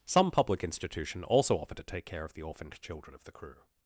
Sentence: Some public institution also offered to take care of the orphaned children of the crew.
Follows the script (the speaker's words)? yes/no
yes